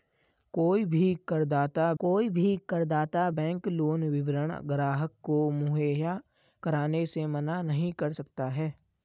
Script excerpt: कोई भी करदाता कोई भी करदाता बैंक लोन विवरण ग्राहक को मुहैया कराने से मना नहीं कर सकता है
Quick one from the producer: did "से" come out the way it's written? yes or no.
yes